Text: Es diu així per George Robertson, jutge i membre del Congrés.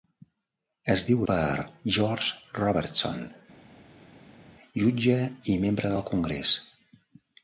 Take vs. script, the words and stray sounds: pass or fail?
fail